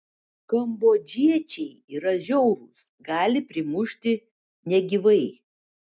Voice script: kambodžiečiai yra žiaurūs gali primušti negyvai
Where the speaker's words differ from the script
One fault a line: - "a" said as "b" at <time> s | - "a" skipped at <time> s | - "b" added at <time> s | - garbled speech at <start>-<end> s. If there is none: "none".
none